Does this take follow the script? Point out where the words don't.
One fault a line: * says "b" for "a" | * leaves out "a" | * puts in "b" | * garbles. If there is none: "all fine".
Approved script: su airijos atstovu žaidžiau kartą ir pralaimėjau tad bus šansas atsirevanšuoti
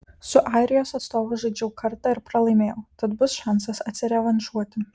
all fine